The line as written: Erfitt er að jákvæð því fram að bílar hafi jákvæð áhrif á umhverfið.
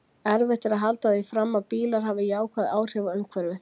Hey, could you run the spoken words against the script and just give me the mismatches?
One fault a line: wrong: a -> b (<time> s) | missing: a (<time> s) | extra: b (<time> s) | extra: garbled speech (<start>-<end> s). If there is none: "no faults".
wrong: jákvæð -> halda (0.8 s)